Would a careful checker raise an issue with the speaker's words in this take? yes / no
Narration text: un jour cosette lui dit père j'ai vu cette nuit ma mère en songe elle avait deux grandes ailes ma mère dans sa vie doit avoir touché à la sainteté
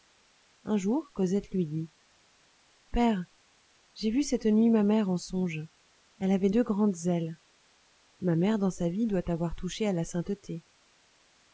no